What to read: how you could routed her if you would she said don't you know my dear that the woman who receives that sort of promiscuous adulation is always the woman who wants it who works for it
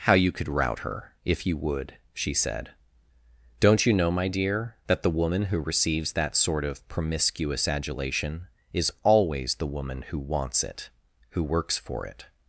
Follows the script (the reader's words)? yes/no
no